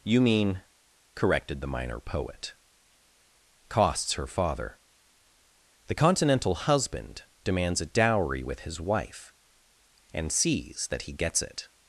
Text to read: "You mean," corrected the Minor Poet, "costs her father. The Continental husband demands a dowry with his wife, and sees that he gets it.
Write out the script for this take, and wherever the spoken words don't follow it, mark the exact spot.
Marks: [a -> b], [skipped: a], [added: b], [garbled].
"You mean," corrected the Minor Poet, "costs her father. The Continental husband demands a dowry with his wife, and sees that he gets it.